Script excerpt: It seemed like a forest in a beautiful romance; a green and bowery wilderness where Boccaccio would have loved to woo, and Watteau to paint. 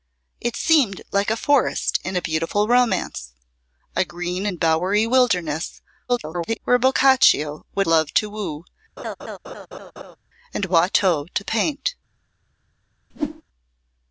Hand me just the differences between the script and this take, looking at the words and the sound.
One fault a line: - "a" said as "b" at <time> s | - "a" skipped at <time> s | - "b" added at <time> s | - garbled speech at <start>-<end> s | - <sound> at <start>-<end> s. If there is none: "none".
- garbled speech at 6.1-6.6 s
- "have" skipped at 7.8 s
- laugh at 9.0-10.2 s
- whoosh at 13.1-13.4 s